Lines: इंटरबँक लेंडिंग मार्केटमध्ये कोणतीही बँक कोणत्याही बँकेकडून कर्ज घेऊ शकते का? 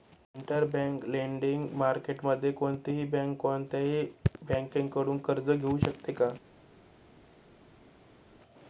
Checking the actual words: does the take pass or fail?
pass